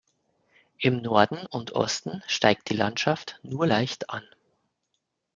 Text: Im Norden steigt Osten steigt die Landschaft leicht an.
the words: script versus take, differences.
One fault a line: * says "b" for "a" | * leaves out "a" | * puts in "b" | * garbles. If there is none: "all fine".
* says "und" for "steigt"
* puts in "nur"